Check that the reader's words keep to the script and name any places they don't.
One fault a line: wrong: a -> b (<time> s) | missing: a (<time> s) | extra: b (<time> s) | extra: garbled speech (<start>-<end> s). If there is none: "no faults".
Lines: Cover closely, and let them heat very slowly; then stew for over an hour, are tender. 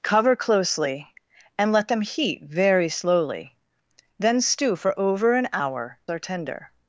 no faults